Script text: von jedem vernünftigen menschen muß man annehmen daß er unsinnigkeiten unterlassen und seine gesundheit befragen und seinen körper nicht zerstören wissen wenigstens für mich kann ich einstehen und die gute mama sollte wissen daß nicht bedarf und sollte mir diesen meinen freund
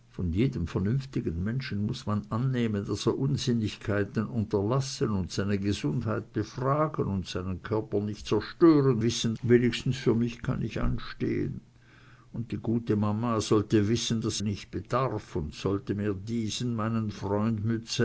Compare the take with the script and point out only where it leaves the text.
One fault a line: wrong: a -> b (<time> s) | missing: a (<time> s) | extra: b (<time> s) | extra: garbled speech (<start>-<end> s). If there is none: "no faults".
no faults